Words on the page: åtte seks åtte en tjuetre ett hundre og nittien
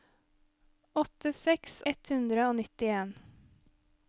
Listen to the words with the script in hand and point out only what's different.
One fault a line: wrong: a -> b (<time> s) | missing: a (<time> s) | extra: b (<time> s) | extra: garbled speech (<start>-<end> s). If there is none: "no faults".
missing: åtte en tjuetre (1.8 s)